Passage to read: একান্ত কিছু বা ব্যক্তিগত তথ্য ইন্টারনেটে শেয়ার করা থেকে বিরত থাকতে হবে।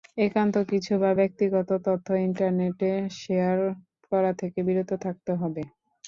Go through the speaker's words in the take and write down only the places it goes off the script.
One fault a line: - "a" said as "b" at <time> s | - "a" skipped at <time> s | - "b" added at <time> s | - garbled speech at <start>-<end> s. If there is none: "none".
none